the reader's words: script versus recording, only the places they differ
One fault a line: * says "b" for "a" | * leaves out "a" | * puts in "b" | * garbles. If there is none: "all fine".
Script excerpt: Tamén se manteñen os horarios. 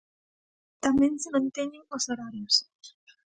all fine